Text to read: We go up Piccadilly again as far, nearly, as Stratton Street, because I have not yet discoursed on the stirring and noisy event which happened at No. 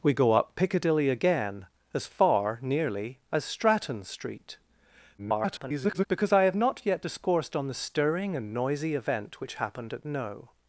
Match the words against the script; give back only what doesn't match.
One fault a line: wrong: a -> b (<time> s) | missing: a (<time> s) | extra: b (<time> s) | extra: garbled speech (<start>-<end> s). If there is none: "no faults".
extra: garbled speech (5.2-6.1 s)